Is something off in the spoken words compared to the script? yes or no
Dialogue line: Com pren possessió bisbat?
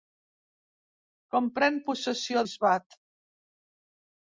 no